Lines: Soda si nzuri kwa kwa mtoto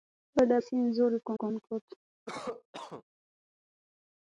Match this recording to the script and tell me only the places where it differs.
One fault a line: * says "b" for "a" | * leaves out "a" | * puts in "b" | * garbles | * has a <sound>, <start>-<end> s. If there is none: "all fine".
* has a cough, 2.3-3.0 s